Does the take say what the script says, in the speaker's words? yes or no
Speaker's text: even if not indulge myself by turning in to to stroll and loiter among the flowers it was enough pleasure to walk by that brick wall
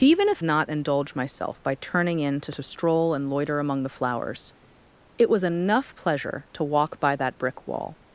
yes